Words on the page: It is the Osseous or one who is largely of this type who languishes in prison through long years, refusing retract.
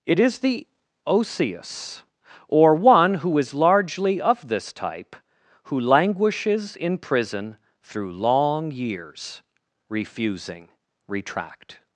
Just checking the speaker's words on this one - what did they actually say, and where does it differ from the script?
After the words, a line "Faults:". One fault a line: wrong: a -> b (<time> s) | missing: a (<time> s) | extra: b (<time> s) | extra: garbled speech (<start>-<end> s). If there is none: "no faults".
It is the Osseous or one who is largely of this type who languishes in prison through long years, refusing retract.
Faults:
no faults